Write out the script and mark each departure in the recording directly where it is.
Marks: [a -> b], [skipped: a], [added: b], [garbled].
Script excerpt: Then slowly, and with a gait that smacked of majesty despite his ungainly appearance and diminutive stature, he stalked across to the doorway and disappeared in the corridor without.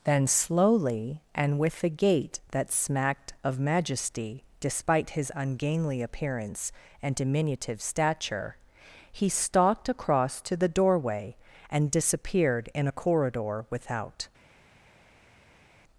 Then slowly, and with a gait that smacked of majesty despite his ungainly appearance and diminutive stature, he stalked across to the doorway and disappeared in [the -> a] corridor without.